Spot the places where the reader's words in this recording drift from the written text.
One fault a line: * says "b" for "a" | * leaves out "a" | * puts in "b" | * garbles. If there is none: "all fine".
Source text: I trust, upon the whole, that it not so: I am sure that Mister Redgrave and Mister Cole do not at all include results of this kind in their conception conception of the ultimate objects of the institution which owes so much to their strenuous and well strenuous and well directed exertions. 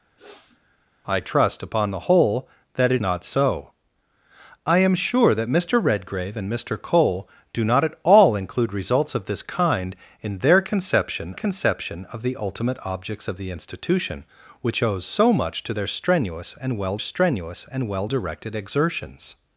all fine